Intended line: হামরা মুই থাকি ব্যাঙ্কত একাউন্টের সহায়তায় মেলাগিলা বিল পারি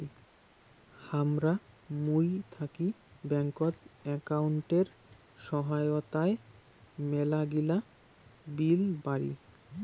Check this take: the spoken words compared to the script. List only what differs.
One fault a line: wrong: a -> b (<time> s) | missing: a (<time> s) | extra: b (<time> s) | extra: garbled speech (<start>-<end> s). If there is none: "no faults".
no faults